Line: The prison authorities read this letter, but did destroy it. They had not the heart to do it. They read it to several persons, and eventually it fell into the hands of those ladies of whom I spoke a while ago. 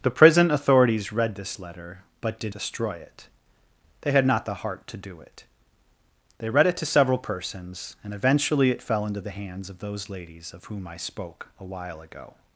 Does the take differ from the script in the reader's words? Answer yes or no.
no